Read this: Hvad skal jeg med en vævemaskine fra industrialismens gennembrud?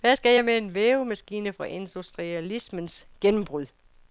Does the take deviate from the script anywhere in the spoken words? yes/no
no